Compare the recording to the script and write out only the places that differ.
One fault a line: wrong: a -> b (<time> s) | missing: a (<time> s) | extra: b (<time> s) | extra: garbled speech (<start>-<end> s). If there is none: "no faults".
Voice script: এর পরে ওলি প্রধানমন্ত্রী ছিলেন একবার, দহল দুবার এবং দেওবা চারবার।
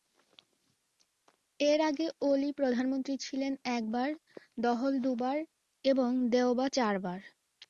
wrong: পরে -> আগে (1.9 s)